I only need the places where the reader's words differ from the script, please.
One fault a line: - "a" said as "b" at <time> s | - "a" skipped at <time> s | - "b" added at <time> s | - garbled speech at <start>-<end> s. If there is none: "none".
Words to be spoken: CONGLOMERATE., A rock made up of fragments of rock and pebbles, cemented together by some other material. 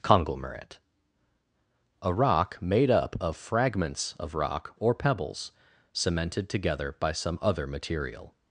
- "and" said as "or" at 4.8 s